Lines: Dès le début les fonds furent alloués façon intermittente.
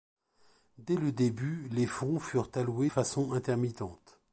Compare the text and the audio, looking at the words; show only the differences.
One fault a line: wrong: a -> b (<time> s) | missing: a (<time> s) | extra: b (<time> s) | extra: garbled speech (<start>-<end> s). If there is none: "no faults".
no faults